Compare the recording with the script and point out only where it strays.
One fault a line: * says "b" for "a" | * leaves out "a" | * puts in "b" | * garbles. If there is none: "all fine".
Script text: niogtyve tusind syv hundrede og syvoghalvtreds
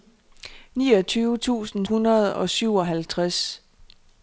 * leaves out "syv"